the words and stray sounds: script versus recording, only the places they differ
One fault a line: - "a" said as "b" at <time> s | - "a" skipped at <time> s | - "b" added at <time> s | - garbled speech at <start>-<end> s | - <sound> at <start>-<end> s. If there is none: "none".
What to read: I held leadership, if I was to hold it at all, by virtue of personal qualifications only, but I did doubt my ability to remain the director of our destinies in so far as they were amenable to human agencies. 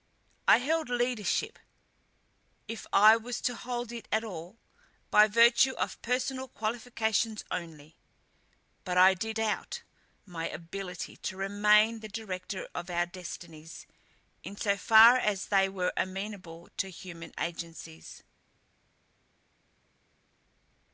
none